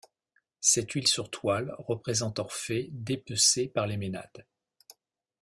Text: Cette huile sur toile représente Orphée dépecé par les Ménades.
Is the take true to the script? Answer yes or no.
yes